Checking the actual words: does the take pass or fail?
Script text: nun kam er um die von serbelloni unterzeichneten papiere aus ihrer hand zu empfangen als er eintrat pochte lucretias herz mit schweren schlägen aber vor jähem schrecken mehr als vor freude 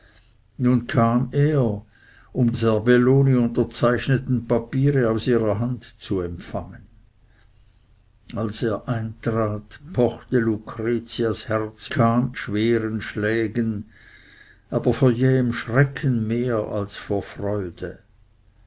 fail